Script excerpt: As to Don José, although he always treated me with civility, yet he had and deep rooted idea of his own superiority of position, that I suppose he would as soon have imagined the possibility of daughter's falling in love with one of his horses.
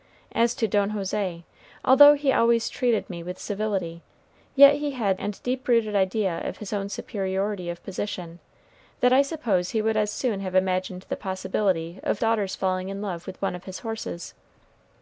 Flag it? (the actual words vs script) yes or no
no